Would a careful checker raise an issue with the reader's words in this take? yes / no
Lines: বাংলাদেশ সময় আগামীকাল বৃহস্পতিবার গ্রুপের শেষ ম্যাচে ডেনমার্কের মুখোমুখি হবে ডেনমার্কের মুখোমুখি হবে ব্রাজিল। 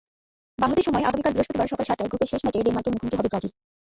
yes